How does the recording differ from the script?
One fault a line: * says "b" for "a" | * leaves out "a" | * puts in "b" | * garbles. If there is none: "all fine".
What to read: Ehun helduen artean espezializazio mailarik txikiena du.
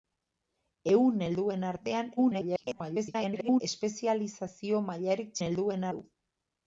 * garbles
* says "helduen" for "txikiena"